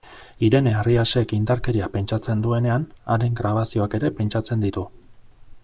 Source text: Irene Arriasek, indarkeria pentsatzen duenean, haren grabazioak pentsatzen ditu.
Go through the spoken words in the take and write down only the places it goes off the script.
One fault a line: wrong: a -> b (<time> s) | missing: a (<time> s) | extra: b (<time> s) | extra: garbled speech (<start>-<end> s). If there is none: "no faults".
extra: ere (4.0 s)